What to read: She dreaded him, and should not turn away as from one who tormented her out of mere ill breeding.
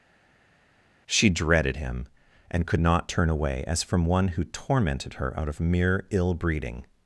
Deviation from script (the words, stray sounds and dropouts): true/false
true